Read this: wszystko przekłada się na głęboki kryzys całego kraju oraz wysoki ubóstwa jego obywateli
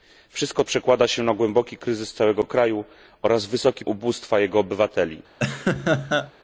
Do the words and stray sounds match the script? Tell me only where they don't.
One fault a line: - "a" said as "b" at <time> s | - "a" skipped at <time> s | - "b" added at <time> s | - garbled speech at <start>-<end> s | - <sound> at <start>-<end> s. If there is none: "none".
- laugh at 5.4-6.3 s